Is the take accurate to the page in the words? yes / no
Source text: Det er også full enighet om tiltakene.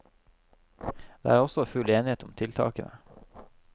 yes